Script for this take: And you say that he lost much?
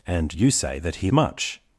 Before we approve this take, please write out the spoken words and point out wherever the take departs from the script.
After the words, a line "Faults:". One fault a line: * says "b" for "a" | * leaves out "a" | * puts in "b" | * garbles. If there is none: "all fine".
And you say that he much?
Faults:
* leaves out "lost"